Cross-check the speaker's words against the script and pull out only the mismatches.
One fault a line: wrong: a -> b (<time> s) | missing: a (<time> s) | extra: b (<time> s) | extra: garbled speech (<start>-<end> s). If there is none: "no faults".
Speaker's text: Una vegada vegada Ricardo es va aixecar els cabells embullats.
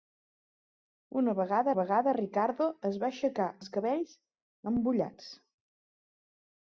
no faults